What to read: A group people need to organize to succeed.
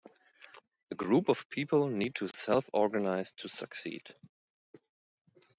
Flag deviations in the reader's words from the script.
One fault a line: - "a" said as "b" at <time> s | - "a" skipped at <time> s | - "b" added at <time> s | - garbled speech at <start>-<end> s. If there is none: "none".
- "of" added at 1.3 s
- "self" added at 2.3 s